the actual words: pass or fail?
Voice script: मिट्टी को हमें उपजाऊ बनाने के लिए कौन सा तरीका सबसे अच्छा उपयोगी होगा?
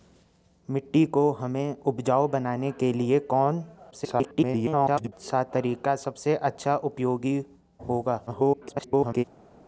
fail